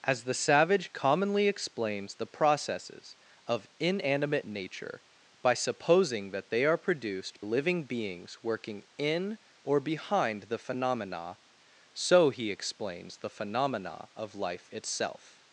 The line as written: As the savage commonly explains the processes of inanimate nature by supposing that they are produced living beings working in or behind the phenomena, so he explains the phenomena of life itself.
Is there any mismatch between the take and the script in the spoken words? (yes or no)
no